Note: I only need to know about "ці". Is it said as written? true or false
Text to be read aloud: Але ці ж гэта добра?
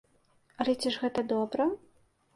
true